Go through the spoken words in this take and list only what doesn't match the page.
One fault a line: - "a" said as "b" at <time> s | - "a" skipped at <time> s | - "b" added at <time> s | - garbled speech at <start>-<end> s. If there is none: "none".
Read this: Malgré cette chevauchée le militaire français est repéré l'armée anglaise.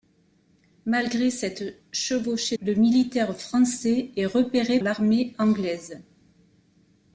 none